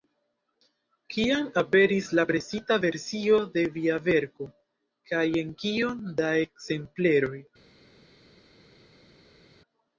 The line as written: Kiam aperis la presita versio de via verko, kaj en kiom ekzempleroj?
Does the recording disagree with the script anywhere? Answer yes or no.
yes